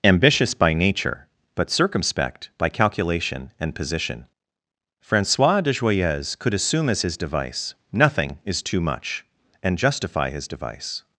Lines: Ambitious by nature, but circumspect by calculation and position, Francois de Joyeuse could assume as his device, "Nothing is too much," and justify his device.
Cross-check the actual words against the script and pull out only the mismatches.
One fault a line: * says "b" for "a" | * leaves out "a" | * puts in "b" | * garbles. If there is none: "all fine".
all fine